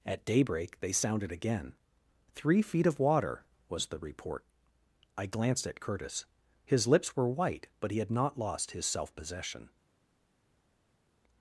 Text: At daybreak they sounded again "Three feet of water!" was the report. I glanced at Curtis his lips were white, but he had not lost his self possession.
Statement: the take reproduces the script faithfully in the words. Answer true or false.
true